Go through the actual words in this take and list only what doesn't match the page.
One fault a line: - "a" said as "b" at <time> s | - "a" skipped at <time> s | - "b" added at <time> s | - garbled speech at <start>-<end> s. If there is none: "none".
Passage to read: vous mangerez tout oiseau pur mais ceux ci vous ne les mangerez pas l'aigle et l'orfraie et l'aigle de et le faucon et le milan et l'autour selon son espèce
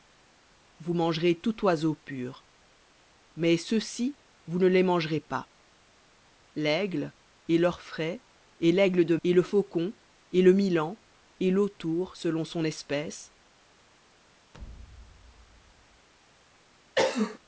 none